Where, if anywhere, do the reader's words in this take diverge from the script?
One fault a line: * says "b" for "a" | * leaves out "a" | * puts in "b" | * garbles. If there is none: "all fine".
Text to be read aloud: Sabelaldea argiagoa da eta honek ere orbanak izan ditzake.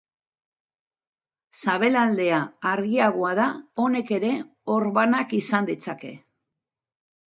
* leaves out "eta"